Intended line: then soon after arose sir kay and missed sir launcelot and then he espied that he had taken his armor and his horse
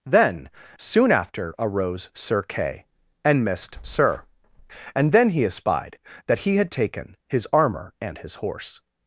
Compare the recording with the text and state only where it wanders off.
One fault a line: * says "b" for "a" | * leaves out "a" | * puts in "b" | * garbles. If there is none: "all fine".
* leaves out "launcelot"